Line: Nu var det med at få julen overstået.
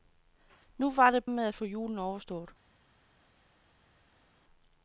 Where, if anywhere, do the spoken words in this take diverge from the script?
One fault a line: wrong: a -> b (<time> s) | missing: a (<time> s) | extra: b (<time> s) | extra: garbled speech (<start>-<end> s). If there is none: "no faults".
no faults